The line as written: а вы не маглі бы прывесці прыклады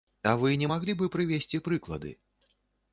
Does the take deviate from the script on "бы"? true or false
false